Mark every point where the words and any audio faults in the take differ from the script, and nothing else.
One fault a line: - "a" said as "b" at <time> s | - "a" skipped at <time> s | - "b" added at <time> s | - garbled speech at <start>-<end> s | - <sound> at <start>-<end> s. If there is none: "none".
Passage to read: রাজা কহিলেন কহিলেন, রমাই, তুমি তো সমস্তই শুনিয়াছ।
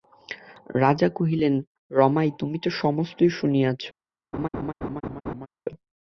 - "কহিলেন" skipped at 1.5 s
- laugh at 4.3-5.5 s